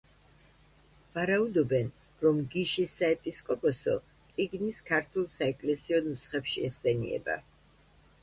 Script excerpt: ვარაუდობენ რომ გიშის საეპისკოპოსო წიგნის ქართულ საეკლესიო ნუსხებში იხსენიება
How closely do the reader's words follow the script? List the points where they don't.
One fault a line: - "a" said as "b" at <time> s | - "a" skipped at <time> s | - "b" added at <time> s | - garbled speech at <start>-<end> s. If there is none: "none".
none